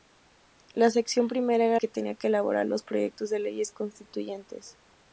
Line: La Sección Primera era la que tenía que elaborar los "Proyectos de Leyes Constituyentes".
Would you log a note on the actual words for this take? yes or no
yes